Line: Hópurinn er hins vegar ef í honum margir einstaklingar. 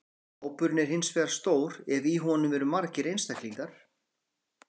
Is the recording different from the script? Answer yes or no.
yes